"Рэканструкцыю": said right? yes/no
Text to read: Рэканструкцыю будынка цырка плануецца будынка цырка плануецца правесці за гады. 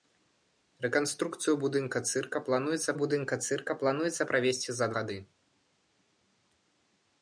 yes